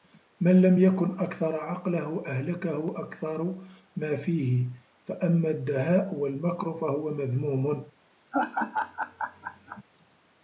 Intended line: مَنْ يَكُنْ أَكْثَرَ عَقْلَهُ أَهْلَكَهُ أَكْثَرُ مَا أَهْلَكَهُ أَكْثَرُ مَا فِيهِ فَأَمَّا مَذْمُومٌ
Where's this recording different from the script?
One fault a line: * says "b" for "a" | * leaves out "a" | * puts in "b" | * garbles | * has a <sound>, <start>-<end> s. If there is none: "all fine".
* puts in "لَمْ"
* says "فِيهِ فَأَمَّا الدَّهَاءُ وَالْمَكْرُ فَهُوَ" for "أَهْلَكَهُ أَكْثَرُ مَا فِيهِ فَأَمَّا"
* has a laugh, 8.3-9.8 s